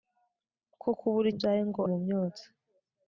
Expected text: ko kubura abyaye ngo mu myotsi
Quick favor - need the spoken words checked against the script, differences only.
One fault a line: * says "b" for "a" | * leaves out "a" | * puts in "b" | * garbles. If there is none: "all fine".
all fine